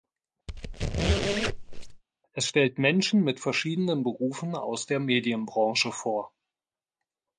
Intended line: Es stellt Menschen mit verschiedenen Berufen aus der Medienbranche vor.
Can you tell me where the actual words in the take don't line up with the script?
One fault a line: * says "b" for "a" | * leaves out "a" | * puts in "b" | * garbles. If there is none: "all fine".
all fine